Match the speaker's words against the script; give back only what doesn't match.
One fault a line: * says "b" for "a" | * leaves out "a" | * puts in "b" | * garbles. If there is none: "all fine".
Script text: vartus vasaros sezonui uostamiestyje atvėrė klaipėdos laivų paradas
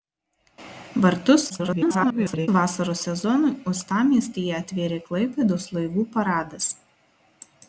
* garbles